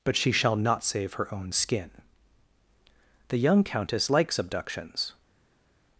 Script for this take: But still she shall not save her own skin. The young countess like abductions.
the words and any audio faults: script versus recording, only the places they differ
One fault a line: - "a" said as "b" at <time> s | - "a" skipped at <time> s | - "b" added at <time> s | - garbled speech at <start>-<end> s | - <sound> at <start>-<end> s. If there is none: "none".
- "still" skipped at 0.1 s
- "like" said as "likes" at 4.1 s